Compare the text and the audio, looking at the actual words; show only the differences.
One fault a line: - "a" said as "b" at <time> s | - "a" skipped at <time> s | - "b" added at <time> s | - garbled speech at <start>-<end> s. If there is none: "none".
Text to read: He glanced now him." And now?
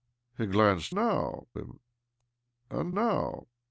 none